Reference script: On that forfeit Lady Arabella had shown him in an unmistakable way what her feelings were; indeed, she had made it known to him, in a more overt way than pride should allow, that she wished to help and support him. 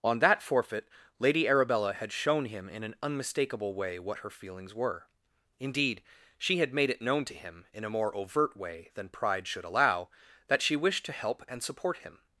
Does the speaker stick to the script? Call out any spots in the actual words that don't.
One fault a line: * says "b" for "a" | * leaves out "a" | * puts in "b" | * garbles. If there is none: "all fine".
all fine